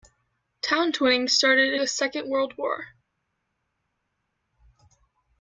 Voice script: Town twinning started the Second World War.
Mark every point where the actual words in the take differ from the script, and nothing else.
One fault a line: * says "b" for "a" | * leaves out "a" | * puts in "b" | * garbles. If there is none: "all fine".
all fine